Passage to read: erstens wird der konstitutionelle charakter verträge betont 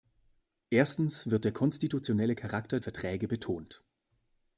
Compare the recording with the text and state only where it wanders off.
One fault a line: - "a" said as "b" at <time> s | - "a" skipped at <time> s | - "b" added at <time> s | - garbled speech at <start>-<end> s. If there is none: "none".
none